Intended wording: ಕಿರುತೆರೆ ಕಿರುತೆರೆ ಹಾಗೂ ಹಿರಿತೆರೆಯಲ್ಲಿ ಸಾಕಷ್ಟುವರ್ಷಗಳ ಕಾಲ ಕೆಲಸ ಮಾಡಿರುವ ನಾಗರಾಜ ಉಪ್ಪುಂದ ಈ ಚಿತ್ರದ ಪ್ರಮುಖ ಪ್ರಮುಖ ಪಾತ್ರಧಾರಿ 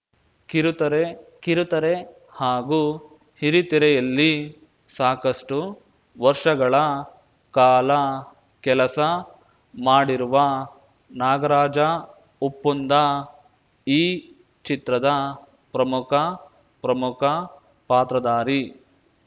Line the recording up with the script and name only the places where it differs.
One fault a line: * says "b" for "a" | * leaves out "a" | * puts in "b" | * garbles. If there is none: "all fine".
all fine